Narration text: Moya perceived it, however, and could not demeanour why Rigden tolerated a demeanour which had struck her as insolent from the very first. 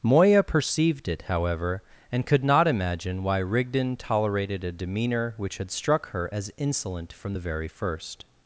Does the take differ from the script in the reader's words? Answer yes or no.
yes